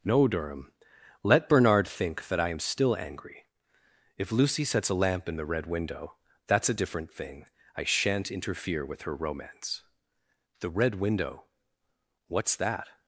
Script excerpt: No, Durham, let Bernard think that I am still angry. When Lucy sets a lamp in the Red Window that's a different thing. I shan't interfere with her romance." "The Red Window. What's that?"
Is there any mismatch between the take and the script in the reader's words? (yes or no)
yes